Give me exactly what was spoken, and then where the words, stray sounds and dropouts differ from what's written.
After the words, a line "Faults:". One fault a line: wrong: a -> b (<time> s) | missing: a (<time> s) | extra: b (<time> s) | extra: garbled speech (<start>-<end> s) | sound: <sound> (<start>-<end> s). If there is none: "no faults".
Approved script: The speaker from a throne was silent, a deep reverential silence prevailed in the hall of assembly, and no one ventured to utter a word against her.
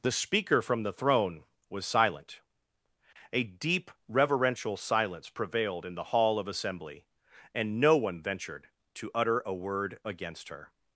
The speaker from the throne was silent, a deep reverential silence prevailed in the hall of assembly, and no one ventured to utter a word against her.
Faults:
wrong: a -> the (0.8 s)